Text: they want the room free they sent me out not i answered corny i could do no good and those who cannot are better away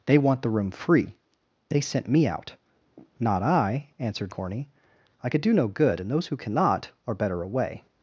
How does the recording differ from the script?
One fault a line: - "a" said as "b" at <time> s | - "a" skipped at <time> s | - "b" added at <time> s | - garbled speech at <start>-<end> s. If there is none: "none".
none